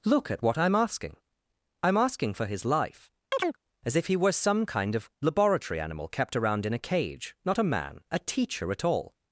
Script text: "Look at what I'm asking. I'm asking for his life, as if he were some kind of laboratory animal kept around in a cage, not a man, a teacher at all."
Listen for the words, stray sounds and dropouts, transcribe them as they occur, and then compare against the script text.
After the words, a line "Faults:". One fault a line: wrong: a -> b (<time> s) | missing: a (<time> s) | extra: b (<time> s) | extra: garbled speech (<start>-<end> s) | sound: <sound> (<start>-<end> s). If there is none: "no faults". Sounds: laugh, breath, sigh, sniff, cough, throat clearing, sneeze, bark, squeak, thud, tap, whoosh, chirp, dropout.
"Look at what I'm asking. I'm asking for his life, as if he were some kind of laboratory animal kept around in a cage, not a man, a teacher at all."
Faults:
sound: chirp (3.3-3.6 s)